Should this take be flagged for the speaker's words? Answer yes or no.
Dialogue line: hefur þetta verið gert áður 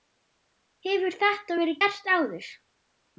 no